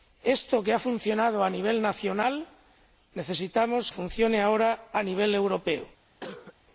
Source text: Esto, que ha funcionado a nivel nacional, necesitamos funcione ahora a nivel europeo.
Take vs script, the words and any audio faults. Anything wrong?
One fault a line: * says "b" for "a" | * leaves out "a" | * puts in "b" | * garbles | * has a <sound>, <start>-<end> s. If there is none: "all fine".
* has a cough, 6.2-6.5 s